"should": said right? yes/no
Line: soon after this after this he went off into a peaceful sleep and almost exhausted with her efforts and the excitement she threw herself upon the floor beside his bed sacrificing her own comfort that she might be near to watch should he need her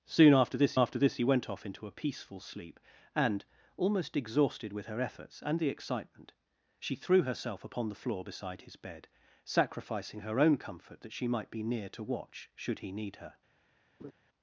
yes